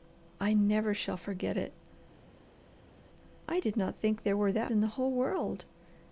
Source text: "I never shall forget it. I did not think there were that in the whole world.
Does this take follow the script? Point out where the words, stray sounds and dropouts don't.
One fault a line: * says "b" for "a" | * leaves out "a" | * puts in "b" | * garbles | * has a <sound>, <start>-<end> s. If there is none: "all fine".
all fine